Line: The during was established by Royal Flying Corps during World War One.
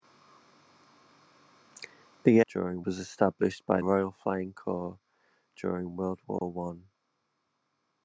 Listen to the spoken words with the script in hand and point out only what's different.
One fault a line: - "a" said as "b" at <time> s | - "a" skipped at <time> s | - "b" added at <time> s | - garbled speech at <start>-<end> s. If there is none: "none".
none